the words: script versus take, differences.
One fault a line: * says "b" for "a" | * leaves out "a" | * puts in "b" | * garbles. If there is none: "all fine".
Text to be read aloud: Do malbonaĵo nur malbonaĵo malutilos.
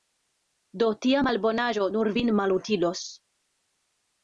* puts in "tia"
* says "vin" for "malbonaĵo"